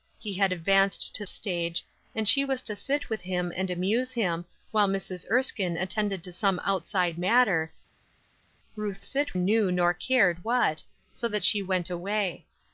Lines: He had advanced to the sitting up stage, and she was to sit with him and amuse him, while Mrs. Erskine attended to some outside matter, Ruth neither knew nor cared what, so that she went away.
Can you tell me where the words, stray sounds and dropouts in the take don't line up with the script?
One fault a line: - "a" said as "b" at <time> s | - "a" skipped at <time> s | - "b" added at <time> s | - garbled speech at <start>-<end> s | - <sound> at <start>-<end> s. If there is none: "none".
- "the sitting up" skipped at 1.3 s
- "neither" said as "sit" at 9.0 s